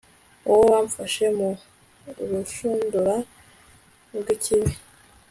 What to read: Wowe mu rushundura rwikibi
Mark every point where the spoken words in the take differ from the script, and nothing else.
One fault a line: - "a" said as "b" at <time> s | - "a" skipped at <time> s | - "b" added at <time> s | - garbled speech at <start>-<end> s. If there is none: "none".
- "wamfashe" added at 0.7 s